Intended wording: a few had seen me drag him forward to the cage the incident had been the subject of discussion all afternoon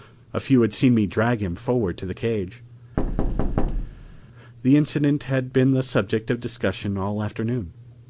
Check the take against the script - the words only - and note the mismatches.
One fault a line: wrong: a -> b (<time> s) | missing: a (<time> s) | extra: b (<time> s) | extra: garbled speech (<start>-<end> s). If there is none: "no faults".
no faults